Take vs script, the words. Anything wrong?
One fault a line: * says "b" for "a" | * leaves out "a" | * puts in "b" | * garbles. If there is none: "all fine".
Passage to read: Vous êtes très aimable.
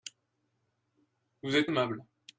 * leaves out "très"